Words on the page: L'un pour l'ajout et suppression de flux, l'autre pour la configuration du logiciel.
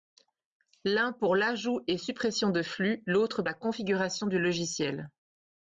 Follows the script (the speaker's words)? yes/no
no